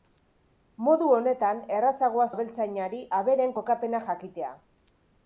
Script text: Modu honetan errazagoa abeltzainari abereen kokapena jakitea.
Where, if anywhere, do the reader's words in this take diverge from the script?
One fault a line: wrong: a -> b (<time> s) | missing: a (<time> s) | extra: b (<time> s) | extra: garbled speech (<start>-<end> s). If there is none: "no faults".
no faults